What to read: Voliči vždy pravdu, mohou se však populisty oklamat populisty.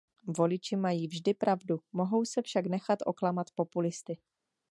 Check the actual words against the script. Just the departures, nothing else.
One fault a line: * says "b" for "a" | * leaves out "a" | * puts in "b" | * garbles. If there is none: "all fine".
* puts in "mají"
* says "nechat" for "populisty"